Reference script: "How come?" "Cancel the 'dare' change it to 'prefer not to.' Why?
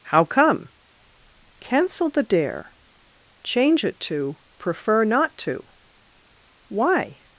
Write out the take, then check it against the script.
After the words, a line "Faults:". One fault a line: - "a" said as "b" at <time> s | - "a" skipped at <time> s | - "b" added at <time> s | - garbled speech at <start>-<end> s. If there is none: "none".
"How come?" "Cancel the 'dare' change it to 'prefer not to.' Why?
Faults:
none